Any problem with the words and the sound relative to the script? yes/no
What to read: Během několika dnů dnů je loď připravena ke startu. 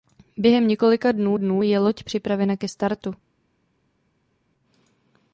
no